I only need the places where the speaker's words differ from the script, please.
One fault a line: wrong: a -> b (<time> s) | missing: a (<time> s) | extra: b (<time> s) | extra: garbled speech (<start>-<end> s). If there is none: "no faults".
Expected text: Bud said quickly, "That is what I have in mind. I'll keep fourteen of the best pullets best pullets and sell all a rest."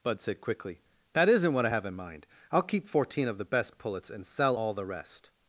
wrong: is -> isn't (1.3 s)
missing: best pullets (4.1 s)
wrong: a -> the (4.7 s)